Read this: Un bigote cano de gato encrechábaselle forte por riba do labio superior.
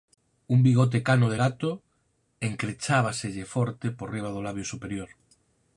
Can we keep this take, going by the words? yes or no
yes